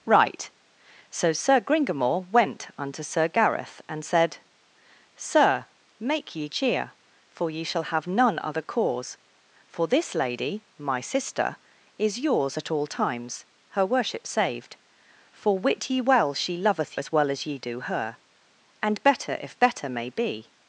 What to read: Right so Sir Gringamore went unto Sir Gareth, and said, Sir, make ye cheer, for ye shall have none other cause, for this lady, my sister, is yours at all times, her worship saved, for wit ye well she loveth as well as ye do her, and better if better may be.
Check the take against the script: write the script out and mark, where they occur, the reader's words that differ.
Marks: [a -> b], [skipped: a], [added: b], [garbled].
Right so Sir Gringamore went unto Sir Gareth, and said, Sir, make ye cheer, for ye shall have none other cause, for this lady, my sister, is yours at all times, her worship saved, for wit ye well she loveth as well as ye do her, and better if better may be.